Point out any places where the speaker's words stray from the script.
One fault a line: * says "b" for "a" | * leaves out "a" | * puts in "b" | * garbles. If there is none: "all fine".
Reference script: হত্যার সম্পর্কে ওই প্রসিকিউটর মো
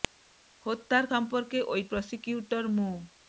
all fine